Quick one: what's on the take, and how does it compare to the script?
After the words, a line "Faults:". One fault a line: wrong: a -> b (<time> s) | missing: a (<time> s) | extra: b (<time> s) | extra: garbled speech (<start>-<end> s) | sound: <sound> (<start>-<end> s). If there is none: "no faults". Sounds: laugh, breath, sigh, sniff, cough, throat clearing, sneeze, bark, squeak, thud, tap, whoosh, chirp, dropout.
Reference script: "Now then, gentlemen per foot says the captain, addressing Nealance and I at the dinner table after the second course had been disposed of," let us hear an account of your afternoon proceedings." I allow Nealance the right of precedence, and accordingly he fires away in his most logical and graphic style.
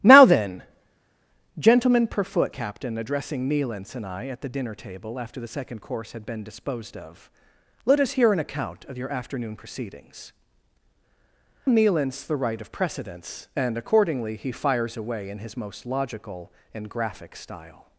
"Now then, gentlemen per foot captain, addressing Nealance and I at the dinner table after the second course had been disposed of," let us hear an account of your afternoon proceedings." Nealance the right of precedence, and accordingly he fires away in his most logical and graphic style.
Faults:
missing: says the (2.6 s)
missing: I allow (10.3 s)